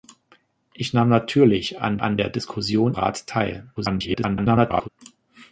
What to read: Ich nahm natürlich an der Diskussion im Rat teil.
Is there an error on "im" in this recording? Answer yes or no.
yes